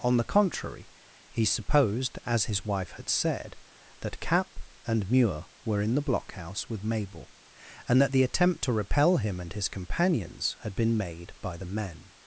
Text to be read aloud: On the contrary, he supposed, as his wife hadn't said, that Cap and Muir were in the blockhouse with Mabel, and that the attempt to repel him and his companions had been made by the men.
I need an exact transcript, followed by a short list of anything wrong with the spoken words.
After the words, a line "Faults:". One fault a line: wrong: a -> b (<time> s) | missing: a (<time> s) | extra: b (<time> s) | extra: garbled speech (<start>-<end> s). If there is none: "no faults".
On the contrary, he supposed, as his wife had said, that Cap and Muir were in the blockhouse with Mabel, and that the attempt to repel him and his companions had been made by the men.
Faults:
wrong: hadn't -> had (2.9 s)